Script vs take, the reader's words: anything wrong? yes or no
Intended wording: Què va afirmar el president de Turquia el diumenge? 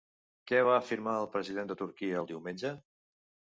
no